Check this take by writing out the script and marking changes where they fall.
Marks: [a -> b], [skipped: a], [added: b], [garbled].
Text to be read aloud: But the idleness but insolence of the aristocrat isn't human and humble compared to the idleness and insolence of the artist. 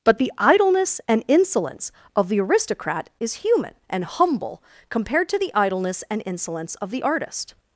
But the idleness [but -> and] insolence of the aristocrat [isn't -> is] human and humble compared to the idleness and insolence of the artist.